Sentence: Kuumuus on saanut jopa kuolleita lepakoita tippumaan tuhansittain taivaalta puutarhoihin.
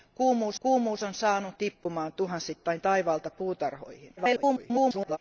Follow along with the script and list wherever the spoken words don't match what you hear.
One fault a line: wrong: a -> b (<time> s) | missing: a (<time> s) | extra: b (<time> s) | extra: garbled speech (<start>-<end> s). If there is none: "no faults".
extra: kuumuus (0.6 s)
missing: jopa kuolleita lepakoita (1.5 s)
extra: garbled speech (4.2-5.2 s)